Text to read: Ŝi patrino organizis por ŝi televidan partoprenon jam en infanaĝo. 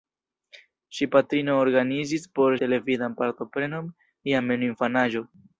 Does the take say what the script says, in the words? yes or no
no